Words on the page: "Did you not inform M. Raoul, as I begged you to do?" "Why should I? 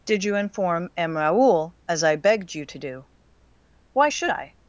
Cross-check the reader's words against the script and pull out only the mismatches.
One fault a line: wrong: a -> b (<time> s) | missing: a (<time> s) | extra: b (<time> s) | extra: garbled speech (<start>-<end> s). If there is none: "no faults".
missing: not (0.3 s)